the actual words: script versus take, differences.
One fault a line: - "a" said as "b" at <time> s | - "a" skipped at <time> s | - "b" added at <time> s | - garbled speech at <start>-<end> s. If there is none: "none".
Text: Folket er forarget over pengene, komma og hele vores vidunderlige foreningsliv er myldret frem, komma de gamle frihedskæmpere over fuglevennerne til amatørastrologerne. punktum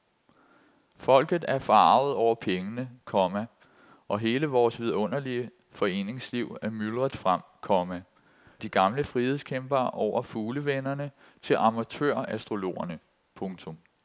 none